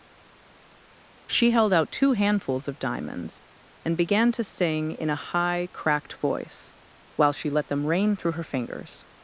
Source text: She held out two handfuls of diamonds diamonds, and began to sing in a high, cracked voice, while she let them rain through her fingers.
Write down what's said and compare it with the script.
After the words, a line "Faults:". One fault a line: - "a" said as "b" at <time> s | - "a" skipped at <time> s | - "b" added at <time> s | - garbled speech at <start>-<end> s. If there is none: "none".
She held out two handfuls of diamonds, and began to sing in a high, cracked voice, while she let them rain through her fingers.
Faults:
- "diamonds" skipped at 3.4 s